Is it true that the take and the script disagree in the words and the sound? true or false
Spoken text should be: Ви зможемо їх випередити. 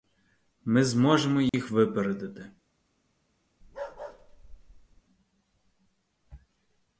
true